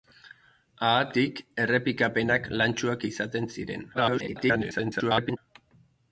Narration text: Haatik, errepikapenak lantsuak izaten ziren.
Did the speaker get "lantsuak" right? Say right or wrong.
right